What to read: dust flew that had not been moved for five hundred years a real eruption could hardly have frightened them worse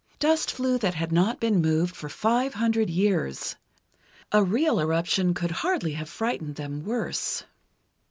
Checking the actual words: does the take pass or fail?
pass